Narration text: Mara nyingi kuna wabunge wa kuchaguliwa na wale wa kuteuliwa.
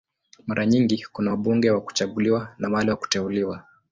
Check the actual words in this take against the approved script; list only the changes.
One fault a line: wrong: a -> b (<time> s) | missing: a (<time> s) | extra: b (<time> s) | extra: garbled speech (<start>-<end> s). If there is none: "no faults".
no faults